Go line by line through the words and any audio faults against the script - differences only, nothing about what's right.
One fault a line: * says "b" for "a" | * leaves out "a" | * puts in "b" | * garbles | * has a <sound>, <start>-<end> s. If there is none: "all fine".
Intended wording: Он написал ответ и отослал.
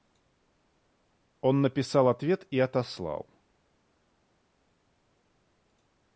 all fine